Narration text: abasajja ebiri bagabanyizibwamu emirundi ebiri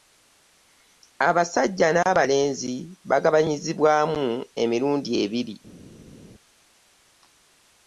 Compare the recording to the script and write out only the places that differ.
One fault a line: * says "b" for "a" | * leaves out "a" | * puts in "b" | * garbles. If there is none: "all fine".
* says "n'abalenzi" for "ebiri"